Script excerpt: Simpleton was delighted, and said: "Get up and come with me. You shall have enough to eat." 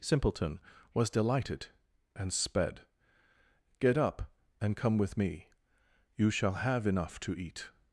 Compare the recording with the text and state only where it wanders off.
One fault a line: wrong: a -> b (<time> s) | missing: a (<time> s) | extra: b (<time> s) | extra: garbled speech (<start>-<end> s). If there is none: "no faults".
wrong: said -> sped (2.3 s)